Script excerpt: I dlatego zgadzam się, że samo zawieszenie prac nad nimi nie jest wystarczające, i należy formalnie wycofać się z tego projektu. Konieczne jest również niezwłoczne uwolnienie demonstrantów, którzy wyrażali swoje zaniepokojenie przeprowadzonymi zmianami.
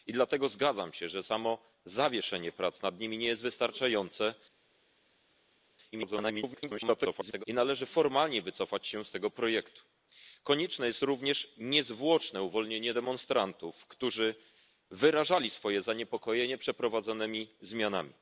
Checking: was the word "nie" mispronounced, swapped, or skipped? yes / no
no